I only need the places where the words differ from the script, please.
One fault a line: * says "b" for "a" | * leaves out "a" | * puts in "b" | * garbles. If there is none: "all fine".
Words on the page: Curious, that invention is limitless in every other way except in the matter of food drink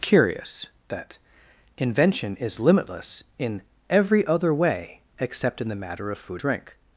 all fine